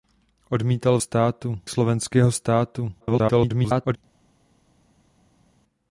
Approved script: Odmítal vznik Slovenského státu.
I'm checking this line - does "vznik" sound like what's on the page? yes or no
no